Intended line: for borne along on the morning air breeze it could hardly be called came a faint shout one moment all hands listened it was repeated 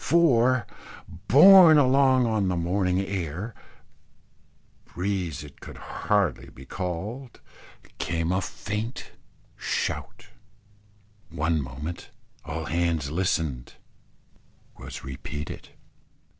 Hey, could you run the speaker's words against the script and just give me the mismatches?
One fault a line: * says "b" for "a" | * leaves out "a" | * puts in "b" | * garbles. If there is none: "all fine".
* leaves out "it"